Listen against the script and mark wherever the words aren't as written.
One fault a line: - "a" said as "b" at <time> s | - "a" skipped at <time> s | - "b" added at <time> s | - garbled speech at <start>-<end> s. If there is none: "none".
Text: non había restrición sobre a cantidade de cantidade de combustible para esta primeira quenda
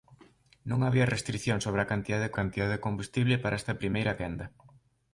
none